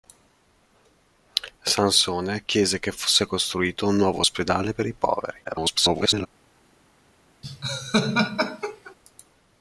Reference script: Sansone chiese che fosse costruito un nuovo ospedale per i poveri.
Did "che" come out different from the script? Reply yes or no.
no